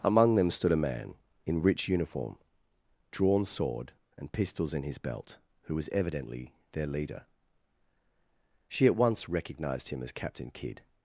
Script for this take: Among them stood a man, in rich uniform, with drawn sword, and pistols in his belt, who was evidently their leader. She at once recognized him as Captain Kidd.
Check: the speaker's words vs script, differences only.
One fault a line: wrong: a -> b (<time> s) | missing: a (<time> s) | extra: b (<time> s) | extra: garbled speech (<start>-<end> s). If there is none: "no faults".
missing: with (2.4 s)